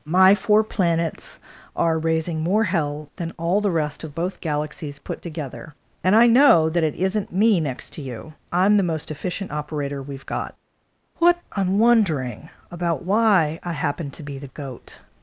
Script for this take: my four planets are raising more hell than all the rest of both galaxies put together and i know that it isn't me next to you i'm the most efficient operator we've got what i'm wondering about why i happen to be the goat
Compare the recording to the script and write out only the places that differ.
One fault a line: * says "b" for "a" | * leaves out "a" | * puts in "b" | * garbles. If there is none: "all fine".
all fine